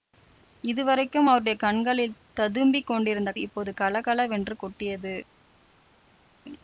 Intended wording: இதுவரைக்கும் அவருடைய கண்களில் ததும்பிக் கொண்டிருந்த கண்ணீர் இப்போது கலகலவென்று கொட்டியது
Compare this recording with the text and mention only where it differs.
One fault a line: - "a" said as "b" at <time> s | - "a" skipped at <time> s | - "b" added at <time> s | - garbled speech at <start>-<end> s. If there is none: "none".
- "கண்ணீர்" skipped at 3.3 s